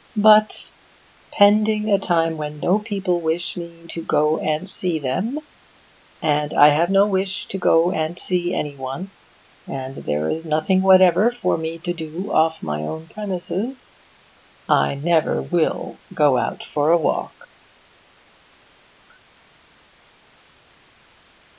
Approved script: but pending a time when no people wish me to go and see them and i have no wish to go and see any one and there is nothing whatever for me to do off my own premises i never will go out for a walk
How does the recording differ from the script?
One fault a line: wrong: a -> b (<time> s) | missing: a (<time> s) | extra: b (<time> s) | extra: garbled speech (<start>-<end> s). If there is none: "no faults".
no faults